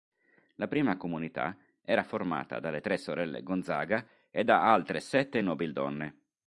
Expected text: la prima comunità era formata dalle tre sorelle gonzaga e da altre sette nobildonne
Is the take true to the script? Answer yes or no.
yes